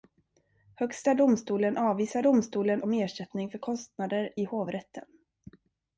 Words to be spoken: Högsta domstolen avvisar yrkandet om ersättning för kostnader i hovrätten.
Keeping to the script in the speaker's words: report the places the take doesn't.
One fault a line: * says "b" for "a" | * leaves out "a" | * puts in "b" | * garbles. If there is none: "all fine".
* says "domstolen" for "yrkandet"